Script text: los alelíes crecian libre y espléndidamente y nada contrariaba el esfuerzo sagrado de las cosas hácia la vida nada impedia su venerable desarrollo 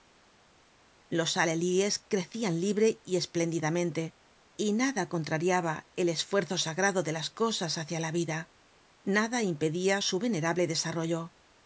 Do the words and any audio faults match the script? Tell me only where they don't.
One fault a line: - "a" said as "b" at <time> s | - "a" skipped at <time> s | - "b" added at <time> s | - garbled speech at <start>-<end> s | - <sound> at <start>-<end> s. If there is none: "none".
none